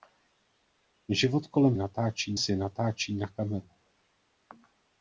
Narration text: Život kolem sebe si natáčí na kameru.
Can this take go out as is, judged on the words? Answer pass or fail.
fail